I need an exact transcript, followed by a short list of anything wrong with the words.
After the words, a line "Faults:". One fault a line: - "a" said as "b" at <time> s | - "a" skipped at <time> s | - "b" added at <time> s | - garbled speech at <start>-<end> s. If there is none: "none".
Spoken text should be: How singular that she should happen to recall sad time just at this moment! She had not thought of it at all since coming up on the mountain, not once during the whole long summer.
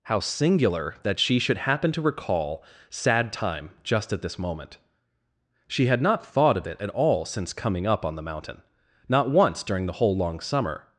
How singular that she should happen to recall sad time just at this moment! She had not thought of it at all since coming up on the mountain, not once during the whole long summer.
Faults:
none